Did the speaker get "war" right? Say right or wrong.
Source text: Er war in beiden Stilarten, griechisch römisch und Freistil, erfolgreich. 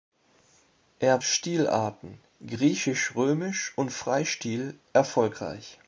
wrong